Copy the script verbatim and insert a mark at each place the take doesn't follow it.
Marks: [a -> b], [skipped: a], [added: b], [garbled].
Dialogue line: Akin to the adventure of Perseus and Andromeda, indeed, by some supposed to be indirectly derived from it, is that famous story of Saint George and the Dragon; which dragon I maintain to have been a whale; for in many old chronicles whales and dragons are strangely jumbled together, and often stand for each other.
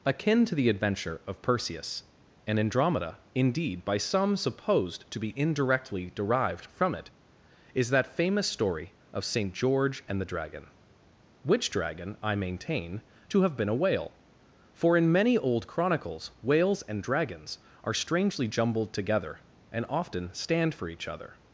Akin to the adventure of Perseus and Andromeda, indeed, by some supposed to be indirectly derived from it, is that famous story of Saint George and the Dragon; which dragon I maintain to have been a whale; for in many old chronicles whales and dragons are strangely jumbled together, and often stand for each other.